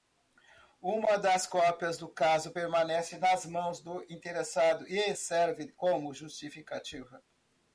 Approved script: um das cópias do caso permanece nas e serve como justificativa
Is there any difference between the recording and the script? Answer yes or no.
yes